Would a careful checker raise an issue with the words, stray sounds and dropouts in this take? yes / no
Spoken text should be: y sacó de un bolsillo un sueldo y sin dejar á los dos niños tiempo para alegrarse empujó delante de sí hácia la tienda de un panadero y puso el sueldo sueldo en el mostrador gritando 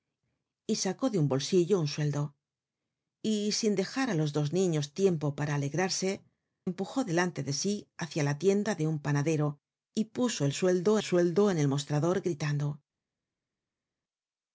no